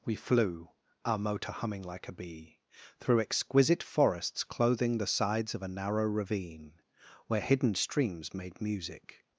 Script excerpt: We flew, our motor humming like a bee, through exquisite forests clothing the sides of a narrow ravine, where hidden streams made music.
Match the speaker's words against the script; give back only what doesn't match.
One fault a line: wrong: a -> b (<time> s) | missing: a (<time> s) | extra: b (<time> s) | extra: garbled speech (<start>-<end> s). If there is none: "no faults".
no faults